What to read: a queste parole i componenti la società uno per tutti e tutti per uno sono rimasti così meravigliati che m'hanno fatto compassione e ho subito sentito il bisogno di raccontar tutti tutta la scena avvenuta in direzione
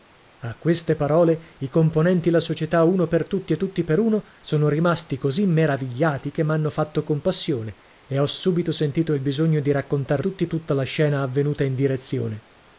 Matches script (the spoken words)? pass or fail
pass